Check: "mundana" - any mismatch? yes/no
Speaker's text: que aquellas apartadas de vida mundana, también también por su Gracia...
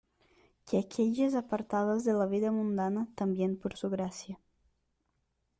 no